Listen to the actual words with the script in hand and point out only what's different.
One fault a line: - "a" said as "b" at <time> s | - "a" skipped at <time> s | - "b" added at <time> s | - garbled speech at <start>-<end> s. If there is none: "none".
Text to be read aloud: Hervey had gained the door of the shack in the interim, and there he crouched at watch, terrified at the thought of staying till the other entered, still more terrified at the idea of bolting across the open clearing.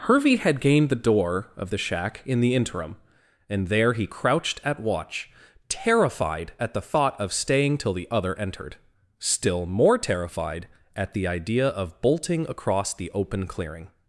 none